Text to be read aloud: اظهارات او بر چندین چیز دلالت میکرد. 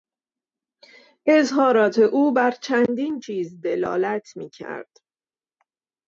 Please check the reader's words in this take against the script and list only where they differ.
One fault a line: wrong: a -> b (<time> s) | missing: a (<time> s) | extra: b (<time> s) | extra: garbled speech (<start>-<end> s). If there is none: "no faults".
no faults